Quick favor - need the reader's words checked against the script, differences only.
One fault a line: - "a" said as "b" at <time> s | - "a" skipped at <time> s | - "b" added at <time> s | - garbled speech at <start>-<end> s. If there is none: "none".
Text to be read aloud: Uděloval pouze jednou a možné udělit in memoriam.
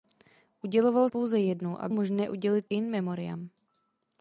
none